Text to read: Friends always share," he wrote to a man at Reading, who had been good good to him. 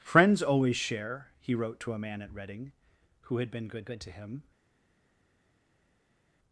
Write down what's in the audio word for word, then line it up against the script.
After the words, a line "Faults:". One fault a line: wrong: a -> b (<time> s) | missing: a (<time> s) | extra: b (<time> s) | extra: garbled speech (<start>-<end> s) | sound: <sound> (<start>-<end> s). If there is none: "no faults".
Friends always share," he wrote to a man at Reading, who had been good good to him.
Faults:
no faults